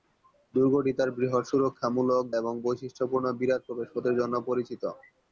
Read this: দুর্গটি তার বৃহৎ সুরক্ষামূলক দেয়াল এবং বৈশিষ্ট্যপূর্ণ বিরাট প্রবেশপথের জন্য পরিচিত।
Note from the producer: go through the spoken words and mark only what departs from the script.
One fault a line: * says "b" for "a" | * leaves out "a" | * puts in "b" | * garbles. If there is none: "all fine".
* leaves out "দেয়াল"